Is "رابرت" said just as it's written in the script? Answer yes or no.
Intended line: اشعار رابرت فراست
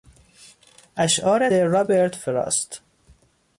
yes